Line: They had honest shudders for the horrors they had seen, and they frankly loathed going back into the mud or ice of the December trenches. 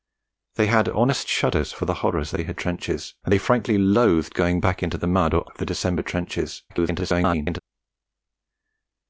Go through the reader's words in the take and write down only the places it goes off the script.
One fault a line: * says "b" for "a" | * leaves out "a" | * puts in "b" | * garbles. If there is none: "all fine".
* says "trenches" for "seen"
* leaves out "ice"
* garbles